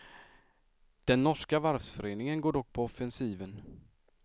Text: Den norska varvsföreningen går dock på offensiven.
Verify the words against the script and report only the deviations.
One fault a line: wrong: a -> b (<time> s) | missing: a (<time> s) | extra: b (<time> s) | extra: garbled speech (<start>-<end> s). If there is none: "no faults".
no faults